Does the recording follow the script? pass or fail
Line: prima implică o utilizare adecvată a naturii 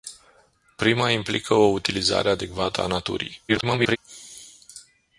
fail